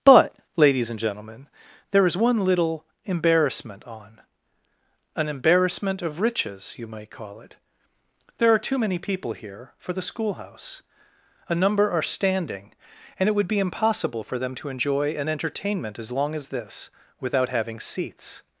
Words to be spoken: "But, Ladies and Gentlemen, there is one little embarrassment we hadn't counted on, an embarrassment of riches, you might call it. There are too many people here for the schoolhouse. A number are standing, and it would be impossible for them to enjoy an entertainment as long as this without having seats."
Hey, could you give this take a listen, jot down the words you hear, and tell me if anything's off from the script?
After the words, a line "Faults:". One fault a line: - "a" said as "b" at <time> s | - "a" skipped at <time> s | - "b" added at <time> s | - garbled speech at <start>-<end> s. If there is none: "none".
"But, Ladies and Gentlemen, there is one little embarrassment on, an embarrassment of riches, you might call it. There are too many people here for the schoolhouse. A number are standing, and it would be impossible for them to enjoy an entertainment as long as this without having seats."
Faults:
- "we hadn't counted" skipped at 3.8 s